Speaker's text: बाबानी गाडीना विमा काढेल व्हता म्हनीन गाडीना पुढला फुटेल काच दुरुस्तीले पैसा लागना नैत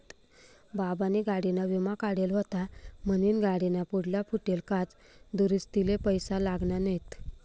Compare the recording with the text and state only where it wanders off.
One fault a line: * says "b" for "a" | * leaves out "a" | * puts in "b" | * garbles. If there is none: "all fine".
all fine